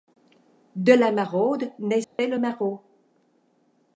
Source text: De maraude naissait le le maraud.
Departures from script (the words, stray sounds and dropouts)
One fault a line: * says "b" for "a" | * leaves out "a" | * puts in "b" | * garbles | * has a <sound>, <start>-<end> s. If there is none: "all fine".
* puts in "la"
* has a dropout, 2.0-2.2 s
* leaves out "le"